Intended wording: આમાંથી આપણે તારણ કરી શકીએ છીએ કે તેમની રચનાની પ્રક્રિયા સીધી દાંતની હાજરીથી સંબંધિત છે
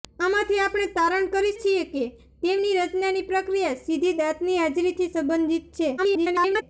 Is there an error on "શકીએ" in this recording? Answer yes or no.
yes